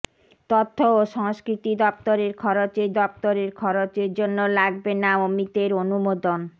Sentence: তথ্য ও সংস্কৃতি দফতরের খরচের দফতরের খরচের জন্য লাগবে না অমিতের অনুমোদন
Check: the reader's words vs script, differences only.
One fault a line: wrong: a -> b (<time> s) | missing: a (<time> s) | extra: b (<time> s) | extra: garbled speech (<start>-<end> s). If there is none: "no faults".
no faults